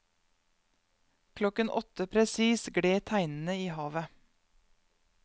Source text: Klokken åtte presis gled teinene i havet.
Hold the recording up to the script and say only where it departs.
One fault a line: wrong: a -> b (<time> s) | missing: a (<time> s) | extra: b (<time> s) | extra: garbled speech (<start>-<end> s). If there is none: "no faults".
no faults